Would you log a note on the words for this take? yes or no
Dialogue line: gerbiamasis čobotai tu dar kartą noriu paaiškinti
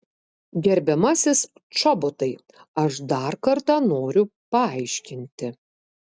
yes